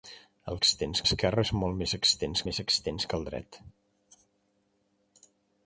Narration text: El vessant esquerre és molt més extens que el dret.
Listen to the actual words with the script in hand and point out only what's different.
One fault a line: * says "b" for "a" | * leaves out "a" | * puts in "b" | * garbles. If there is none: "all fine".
* says "extens" for "vessant"
* puts in "més extens"